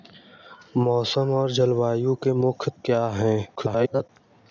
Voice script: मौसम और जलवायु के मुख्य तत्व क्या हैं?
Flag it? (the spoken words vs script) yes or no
yes